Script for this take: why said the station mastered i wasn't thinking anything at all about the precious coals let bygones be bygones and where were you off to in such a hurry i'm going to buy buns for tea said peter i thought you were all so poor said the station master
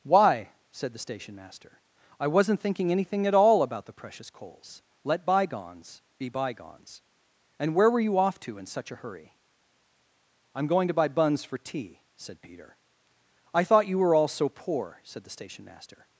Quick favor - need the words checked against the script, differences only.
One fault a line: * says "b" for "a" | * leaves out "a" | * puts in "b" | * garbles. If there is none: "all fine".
* says "master" for "mastered"